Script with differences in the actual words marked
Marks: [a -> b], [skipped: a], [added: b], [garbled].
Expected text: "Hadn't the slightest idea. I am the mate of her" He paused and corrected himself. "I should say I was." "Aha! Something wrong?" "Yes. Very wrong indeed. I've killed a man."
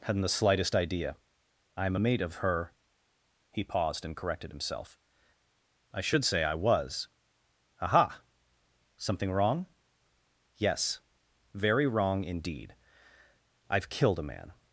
"Hadn't the slightest idea. I am [the -> a] mate of her" He paused and corrected himself. "I should say I was." "Aha! Something wrong?" "Yes. Very wrong indeed. I've killed a man."